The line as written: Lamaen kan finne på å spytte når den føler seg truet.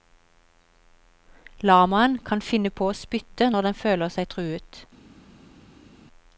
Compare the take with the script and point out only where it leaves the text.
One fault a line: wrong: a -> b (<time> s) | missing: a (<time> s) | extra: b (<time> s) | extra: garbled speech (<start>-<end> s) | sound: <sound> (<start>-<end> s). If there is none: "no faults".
no faults